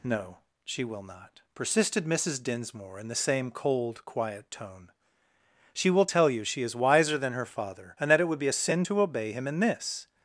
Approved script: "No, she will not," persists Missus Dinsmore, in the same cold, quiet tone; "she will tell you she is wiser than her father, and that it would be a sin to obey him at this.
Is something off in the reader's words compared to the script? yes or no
yes